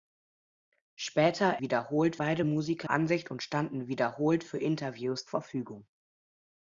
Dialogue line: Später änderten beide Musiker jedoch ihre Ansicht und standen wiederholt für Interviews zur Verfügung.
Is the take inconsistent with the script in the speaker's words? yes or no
yes